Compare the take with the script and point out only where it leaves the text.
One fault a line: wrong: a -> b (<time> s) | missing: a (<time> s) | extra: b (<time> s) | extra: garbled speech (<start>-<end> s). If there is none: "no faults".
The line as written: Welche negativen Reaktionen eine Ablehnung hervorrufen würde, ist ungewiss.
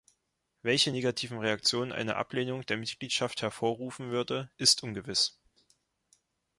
extra: der Mitgliedschaft (2.6 s)